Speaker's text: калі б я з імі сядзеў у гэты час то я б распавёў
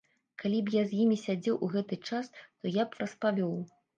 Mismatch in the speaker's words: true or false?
false